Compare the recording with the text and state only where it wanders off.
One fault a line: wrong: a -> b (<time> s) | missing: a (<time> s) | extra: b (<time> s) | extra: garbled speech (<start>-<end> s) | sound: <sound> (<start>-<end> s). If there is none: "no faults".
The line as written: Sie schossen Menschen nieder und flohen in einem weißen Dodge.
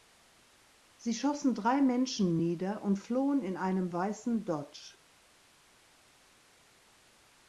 extra: drei (1.5 s)